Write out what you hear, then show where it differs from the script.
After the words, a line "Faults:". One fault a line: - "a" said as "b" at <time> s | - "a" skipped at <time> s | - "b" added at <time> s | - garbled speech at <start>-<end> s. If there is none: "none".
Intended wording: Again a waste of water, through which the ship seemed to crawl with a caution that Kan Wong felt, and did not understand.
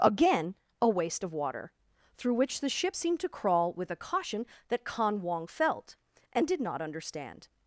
Again a waste of water, through which the ship seemed to crawl with a caution that Kan Wong felt, and did not understand.
Faults:
none